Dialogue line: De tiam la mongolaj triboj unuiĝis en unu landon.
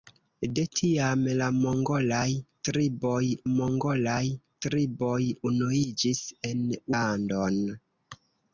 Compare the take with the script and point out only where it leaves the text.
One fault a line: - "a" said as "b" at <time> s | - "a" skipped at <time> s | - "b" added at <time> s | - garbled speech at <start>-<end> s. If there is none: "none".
- "mongolaj triboj" added at 3.5 s
- "unu" skipped at 6.6 s